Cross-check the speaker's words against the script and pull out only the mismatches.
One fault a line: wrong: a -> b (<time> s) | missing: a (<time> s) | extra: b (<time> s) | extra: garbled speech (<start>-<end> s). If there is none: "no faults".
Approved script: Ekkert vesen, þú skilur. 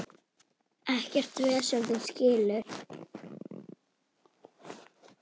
no faults